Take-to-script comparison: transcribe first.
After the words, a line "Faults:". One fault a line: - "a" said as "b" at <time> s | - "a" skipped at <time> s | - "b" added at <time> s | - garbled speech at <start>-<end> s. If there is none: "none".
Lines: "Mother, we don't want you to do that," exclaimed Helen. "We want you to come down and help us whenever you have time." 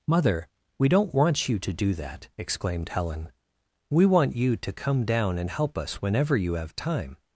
"Mother, we don't want you to do that," exclaimed Helen. "We want you to come down and help us whenever you have time."
Faults:
none